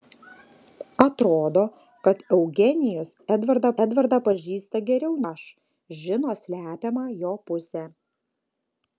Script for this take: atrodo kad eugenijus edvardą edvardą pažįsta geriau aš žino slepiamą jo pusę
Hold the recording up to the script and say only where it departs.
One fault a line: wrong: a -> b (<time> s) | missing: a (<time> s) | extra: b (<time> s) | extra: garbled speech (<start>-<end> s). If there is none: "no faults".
no faults